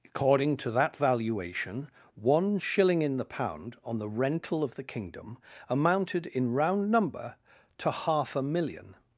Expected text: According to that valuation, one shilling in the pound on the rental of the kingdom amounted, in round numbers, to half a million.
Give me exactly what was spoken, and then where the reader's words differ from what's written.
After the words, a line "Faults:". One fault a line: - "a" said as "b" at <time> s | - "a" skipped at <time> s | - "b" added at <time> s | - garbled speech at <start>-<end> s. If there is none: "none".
According to that valuation, one shilling in the pound on the rental of the kingdom amounted, in round number, to half a million.
Faults:
- "numbers" said as "number" at 6.9 s